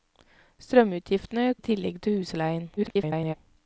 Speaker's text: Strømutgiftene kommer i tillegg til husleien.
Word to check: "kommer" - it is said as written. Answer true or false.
false